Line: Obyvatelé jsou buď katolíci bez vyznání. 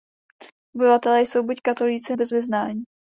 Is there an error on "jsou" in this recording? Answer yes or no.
no